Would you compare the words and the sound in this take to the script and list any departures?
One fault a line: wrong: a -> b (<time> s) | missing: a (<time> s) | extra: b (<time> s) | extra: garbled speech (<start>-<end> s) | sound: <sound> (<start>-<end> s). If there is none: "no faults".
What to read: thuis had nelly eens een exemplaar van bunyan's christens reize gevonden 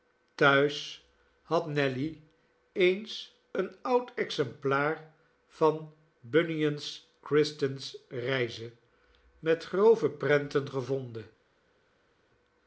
extra: oud (3.8 s)
extra: met grove prenten (9.4 s)